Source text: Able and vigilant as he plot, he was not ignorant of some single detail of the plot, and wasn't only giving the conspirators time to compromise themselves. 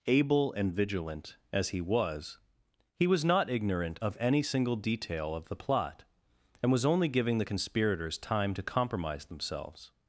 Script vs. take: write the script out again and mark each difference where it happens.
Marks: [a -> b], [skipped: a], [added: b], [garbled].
Able and vigilant as he [plot, -> was] he was not ignorant of [some -> any] single detail of the plot, and [wasn't -> was] only giving the conspirators time to compromise themselves.